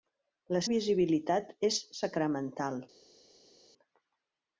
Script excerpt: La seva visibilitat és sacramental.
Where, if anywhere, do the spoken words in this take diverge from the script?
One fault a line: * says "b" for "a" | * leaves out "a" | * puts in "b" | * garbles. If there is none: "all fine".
* leaves out "seva"